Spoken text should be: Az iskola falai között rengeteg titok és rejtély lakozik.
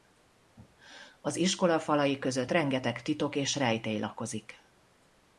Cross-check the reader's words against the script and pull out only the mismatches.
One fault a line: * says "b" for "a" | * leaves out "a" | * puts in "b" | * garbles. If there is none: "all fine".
all fine